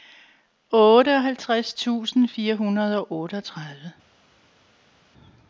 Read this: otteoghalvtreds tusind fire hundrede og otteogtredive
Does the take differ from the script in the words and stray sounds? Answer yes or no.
no